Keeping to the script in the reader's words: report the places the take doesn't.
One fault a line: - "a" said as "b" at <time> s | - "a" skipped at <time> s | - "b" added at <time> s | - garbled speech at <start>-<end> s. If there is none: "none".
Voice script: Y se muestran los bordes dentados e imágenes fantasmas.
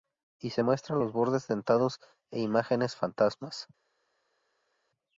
none